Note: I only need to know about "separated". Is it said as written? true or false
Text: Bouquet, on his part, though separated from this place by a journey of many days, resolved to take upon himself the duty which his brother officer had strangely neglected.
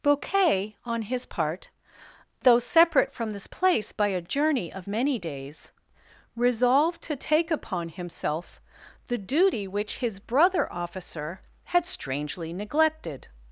false